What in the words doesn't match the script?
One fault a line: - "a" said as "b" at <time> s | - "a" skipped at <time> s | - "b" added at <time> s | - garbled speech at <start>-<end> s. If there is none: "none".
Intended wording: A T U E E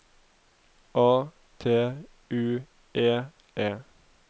none